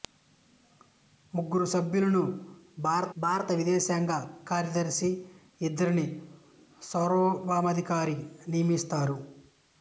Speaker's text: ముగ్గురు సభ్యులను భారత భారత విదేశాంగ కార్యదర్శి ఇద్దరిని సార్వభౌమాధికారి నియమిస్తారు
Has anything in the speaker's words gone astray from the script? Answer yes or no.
no